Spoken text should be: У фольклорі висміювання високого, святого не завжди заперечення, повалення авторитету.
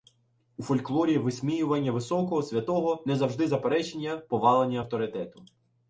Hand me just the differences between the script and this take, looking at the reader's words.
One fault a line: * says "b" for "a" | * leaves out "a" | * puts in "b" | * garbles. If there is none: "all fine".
all fine